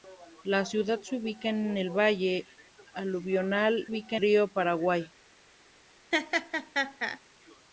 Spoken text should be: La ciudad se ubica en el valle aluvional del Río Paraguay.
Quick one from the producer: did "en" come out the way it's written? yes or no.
yes